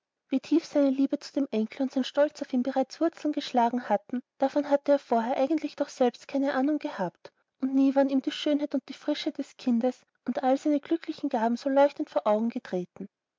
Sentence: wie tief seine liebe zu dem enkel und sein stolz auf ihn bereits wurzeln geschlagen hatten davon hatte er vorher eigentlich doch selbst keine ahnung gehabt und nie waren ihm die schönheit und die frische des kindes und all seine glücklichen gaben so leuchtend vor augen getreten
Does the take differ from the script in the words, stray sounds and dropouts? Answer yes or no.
no